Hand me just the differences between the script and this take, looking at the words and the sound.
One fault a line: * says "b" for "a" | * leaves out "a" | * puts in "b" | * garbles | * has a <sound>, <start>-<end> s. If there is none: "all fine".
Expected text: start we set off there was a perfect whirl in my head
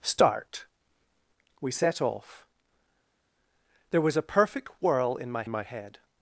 * puts in "my"